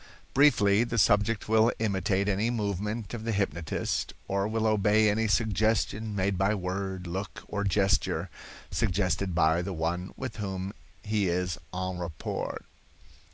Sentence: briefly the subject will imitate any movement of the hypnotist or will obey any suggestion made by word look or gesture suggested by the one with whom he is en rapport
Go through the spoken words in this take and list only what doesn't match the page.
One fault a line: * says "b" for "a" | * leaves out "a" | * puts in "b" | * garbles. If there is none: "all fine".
all fine